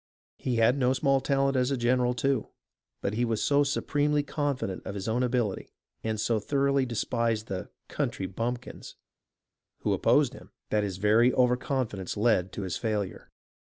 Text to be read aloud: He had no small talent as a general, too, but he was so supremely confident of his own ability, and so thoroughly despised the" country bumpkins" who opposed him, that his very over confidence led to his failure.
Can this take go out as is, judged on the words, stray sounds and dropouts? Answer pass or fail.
pass